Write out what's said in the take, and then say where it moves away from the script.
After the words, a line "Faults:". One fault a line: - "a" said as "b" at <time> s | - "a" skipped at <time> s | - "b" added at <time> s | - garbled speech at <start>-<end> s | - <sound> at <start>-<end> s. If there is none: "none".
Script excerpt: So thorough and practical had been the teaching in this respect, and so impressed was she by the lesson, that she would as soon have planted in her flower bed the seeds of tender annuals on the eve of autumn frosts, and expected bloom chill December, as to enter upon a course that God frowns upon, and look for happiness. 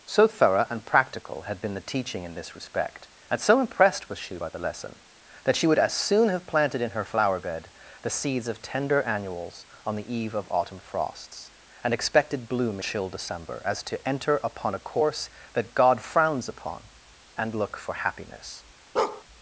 So thorough and practical had been the teaching in this respect, and so impressed was she by the lesson, that she would as soon have planted in her flower bed the seeds of tender annuals on the eve of autumn frosts, and expected bloom chill December, as to enter upon a course that God frowns upon, and look for happiness.
Faults:
- bark at 19.0-19.2 s